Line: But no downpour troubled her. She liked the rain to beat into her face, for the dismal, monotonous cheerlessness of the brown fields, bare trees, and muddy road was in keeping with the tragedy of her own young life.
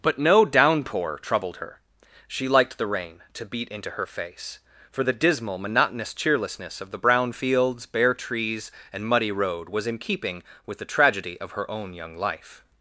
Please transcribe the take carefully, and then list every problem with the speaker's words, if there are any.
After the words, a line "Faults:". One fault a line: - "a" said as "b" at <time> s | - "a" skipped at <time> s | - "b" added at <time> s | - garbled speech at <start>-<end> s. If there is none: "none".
But no downpour troubled her. She liked the rain to beat into her face, for the dismal, monotonous cheerlessness of the brown fields, bare trees, and muddy road was in keeping with the tragedy of her own young life.
Faults:
none